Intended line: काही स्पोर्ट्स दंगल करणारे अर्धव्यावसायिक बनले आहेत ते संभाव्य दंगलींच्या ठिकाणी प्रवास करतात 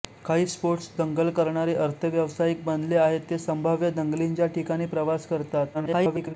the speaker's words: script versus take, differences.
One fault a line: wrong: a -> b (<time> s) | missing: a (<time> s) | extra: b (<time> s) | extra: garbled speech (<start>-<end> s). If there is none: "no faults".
extra: garbled speech (5.7-6.3 s)